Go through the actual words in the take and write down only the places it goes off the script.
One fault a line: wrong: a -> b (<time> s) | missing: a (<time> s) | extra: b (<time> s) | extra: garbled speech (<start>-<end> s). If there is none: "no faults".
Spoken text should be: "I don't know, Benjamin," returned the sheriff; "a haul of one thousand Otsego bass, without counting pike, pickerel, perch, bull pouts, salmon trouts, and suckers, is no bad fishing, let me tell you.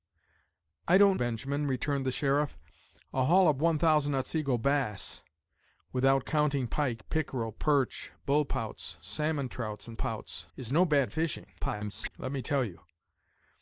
missing: know (1.2 s)
wrong: suckers -> pouts (9.9 s)
extra: garbled speech (11.6-12.1 s)